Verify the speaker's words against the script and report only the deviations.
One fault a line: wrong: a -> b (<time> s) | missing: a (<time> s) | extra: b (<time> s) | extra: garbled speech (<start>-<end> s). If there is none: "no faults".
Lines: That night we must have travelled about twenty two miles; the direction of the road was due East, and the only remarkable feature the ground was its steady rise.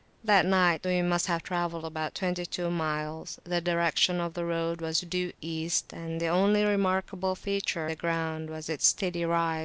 no faults